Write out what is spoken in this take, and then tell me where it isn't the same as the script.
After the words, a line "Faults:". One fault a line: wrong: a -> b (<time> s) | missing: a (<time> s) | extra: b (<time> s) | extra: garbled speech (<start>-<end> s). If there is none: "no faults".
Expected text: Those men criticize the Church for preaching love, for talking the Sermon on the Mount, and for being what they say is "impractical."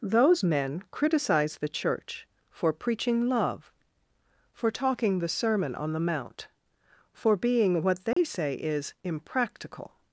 Those men criticize the Church for preaching love, for talking the Sermon on the Mount, for being what they say is "impractical."
Faults:
missing: and (6.5 s)